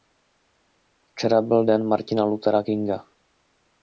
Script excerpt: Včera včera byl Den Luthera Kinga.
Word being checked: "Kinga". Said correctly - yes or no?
yes